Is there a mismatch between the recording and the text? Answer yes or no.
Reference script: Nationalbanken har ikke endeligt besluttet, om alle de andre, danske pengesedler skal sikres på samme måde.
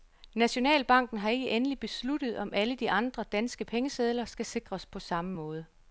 no